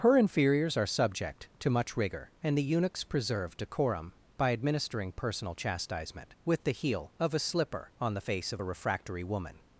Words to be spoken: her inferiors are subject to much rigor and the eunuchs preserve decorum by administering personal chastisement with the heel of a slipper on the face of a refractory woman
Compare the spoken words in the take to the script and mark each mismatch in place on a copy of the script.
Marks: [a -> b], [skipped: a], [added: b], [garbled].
her inferiors are subject to much rigor and the eunuchs preserve decorum by administering personal chastisement with the heel of a slipper on the face of a refractory woman